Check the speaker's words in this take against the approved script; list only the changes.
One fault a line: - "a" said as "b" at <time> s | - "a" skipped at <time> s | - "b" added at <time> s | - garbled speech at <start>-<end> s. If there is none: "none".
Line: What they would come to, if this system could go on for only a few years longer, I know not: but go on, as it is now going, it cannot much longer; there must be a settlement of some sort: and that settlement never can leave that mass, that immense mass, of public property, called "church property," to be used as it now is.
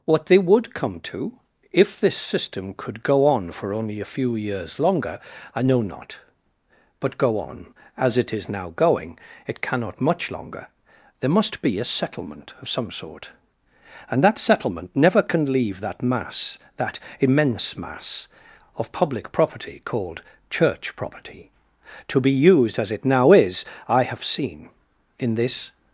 - "I have seen in this" added at 23.9 s